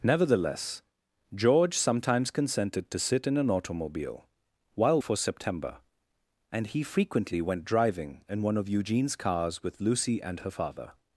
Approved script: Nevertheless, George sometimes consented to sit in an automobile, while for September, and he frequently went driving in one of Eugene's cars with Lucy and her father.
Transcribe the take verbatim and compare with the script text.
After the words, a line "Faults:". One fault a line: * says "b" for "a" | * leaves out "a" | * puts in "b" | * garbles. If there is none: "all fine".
Nevertheless, George sometimes consented to sit in an automobile, while for September, and he frequently went driving in one of Eugene's cars with Lucy and her father.
Faults:
all fine